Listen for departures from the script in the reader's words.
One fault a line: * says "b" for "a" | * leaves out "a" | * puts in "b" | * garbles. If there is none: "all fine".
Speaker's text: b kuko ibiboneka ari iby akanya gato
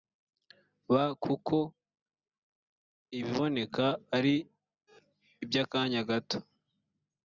all fine